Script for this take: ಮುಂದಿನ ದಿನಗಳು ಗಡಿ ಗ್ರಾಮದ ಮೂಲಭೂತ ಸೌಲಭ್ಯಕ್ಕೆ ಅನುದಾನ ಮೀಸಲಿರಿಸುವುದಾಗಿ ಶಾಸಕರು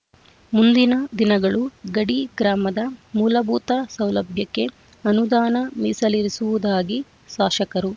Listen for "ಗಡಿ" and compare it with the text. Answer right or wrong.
right